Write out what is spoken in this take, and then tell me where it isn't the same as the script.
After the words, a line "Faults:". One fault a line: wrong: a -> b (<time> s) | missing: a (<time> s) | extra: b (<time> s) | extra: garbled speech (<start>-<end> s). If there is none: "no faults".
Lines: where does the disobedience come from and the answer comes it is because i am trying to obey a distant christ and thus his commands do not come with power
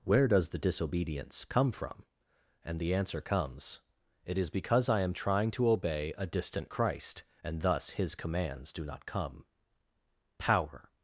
where does the disobedience come from and the answer comes it is because i am trying to obey a distant christ and thus his commands do not come power
Faults:
missing: with (9.4 s)